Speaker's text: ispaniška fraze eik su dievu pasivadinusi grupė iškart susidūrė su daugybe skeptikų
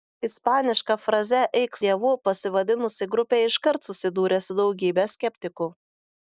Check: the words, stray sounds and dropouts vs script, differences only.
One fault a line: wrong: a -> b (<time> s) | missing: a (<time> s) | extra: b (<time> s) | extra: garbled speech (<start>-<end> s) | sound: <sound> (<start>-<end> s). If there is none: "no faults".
missing: su (1.8 s)